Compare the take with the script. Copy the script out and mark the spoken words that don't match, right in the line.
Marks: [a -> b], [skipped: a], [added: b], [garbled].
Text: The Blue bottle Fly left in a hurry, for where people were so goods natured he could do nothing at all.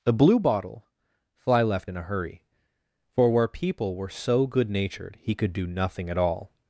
The Blue bottle Fly left in a hurry, for where people were so [goods -> good] natured he could do nothing at all.